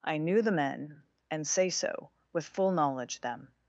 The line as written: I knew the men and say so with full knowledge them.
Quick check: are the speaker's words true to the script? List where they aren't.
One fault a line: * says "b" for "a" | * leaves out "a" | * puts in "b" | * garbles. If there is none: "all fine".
all fine